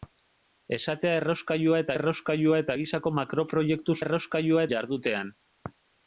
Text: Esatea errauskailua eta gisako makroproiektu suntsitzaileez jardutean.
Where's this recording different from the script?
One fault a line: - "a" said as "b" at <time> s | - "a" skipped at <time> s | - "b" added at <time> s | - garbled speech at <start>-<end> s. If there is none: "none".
- "errauskailua eta" added at 1.9 s
- "suntsitzaileez" said as "errauskailua" at 4.0 s